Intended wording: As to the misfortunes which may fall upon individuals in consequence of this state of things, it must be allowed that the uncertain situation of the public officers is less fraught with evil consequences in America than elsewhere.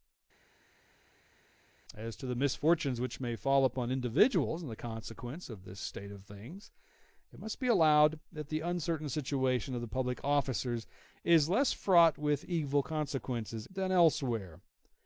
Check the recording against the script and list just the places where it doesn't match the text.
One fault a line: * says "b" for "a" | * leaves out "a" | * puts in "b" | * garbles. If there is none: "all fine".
* leaves out "in America"